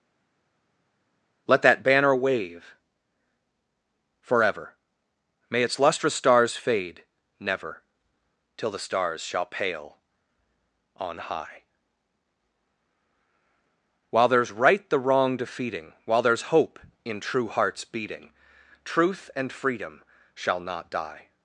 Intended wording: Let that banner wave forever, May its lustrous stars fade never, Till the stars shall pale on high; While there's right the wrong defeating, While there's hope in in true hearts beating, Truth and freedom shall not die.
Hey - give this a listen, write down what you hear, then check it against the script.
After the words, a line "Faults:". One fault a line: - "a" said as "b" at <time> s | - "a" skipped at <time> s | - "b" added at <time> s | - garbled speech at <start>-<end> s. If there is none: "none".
Let that banner wave forever, May its lustrous stars fade never, Till the stars shall pale on high; While there's right the wrong defeating, While there's hope in true hearts beating, Truth and freedom shall not die.
Faults:
- "in" skipped at 17.2 s